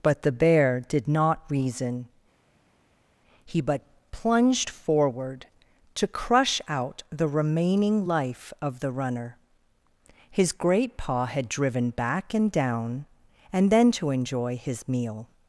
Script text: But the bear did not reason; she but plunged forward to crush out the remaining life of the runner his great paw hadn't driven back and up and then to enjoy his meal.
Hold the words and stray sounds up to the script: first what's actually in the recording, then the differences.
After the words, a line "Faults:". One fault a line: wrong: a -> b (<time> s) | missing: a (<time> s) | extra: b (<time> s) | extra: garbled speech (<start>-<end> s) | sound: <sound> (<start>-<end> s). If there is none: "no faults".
But the bear did not reason; he but plunged forward to crush out the remaining life of the runner his great paw had driven back and down and then to enjoy his meal.
Faults:
wrong: she -> he (3.4 s)
wrong: hadn't -> had (11.3 s)
wrong: up -> down (12.5 s)